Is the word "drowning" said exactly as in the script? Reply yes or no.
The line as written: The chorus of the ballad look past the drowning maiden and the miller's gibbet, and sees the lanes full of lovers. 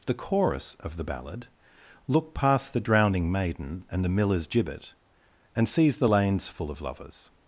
yes